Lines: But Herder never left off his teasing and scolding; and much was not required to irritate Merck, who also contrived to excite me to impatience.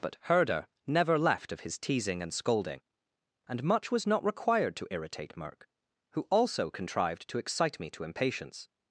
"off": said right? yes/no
no